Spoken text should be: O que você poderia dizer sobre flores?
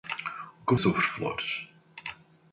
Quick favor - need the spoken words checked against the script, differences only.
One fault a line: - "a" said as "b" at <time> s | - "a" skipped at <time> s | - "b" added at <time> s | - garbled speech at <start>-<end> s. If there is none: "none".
- "você poderia dizer" skipped at 0.7 s